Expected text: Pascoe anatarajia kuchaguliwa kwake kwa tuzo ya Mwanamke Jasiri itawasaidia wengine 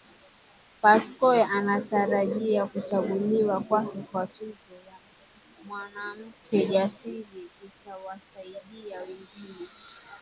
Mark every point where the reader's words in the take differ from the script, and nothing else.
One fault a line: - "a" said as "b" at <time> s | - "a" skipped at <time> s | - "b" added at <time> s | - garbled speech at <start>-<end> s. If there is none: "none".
none